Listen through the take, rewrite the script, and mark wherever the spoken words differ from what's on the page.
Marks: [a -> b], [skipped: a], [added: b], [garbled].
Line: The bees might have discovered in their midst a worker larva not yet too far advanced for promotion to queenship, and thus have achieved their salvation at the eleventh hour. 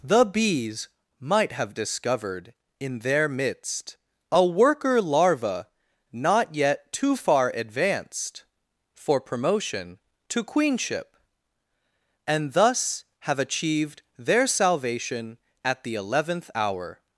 The bees might have discovered in their midst a worker larva not yet too far advanced for promotion to queenship, and thus have achieved their salvation at the eleventh hour.